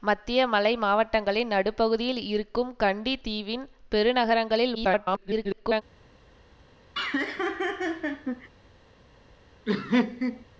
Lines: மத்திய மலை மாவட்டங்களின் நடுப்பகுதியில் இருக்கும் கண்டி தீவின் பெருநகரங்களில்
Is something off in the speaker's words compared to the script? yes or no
yes